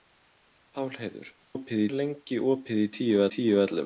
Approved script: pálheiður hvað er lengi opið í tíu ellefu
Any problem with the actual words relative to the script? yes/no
yes